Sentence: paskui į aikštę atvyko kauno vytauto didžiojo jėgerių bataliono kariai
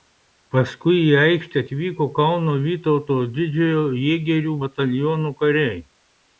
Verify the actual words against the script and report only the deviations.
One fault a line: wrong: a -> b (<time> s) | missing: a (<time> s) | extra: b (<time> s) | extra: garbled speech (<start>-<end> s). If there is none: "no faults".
no faults